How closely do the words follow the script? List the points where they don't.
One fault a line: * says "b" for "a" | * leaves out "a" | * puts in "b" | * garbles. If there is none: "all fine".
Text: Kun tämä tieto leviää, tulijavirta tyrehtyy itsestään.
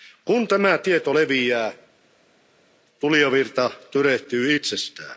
all fine